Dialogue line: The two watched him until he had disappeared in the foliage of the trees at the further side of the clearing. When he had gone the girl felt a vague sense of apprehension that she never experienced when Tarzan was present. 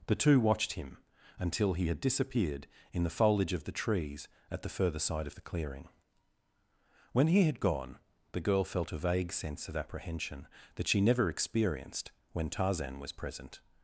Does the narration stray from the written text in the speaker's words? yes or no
no